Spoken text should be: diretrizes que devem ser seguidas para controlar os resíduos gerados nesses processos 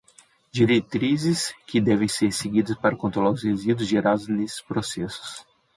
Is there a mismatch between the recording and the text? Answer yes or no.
no